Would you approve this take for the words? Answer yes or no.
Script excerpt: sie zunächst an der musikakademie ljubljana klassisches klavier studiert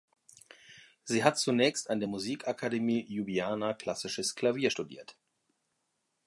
no